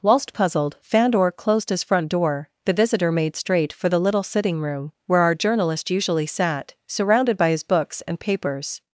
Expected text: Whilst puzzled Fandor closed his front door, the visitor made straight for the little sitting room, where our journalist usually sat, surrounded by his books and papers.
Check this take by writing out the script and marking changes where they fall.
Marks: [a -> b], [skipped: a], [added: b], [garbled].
Whilst puzzled Fandor closed his front door, the visitor made straight for the little sitting room, where our journalist usually sat, surrounded by his books and papers.